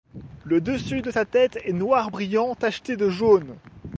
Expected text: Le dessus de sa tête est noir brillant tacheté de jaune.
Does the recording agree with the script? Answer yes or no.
yes